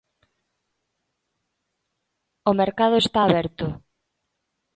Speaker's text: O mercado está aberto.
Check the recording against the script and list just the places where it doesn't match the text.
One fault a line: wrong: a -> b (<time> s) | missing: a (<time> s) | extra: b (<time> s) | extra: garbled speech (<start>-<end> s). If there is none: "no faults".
no faults